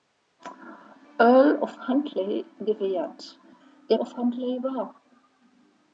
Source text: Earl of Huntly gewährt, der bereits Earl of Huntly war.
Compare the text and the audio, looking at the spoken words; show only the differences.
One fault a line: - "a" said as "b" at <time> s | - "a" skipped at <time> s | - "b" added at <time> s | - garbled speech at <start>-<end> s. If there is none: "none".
- "bereits Earl" skipped at 4.0 s